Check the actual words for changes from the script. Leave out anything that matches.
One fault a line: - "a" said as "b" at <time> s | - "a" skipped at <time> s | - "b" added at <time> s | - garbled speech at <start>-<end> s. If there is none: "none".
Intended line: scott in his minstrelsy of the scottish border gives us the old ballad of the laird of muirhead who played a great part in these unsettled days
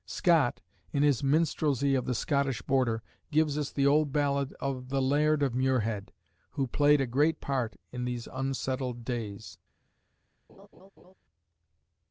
none